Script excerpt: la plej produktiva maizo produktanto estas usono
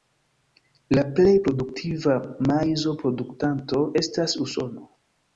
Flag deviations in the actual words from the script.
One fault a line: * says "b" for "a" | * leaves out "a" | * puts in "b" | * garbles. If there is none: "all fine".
all fine